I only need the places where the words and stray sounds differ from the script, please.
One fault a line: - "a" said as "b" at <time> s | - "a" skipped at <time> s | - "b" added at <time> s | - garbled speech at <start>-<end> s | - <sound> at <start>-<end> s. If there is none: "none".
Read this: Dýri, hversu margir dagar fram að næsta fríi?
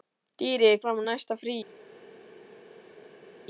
- "hversu margir dagar" skipped at 0.7 s